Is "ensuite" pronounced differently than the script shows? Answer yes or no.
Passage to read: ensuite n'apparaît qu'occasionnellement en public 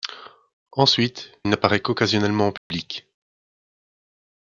no